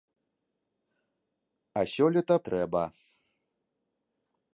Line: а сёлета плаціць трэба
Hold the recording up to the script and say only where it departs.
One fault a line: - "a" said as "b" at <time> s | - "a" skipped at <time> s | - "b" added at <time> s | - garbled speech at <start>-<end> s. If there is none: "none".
- "плаціць" skipped at 2.4 s